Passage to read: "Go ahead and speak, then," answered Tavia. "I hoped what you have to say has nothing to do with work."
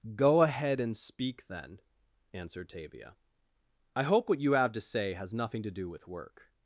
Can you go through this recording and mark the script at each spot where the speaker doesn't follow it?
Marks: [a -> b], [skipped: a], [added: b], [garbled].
"Go ahead and speak, then," answered Tavia. "I [hoped -> hope] what you have to say has nothing to do with work."